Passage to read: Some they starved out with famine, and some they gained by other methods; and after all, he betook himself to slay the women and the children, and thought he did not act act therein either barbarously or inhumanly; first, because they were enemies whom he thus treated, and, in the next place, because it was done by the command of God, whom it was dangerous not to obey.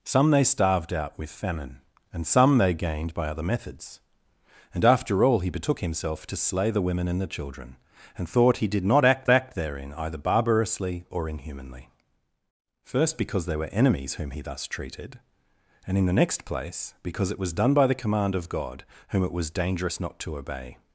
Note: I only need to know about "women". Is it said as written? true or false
true